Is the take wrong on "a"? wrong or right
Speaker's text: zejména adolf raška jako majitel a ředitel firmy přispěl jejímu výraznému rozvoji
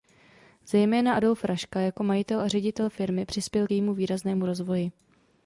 right